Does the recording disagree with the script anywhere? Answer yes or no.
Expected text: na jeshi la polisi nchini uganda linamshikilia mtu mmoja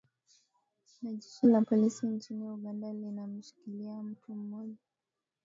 no